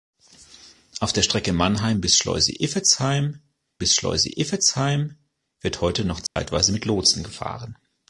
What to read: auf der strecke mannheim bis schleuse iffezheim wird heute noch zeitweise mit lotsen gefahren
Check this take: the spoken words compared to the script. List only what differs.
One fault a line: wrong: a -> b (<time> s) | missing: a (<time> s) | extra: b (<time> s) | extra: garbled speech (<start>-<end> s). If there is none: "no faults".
extra: bis schleuse iffezheim (3.8 s)